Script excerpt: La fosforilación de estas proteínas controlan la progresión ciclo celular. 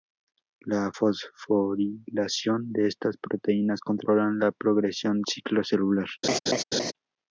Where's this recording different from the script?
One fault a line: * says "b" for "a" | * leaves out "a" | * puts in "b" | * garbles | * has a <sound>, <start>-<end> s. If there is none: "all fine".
* has a laugh, 6.2-6.9 s